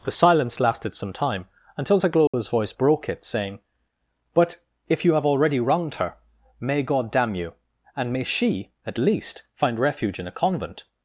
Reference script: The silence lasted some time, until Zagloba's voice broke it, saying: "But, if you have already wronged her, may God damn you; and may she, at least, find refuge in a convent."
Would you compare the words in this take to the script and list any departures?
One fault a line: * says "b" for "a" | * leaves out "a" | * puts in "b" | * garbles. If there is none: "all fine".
all fine